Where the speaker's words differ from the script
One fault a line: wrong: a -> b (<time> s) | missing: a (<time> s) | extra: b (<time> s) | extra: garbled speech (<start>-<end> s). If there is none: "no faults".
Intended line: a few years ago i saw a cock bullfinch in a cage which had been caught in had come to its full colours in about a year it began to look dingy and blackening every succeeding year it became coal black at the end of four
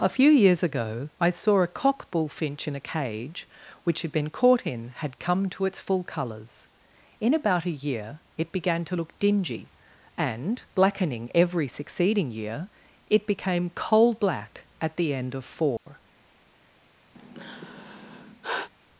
no faults